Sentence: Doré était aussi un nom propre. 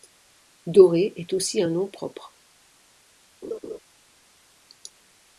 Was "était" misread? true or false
true